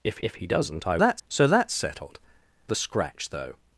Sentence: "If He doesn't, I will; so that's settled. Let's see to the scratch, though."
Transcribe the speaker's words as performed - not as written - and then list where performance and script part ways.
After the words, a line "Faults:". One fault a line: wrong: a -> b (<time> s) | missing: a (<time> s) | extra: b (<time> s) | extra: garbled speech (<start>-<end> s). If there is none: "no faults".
"If if He doesn't, I that's; so that's settled. The scratch, though."
Faults:
extra: if (0.2 s)
wrong: will -> that's (1.0 s)
missing: Let's see to (2.2 s)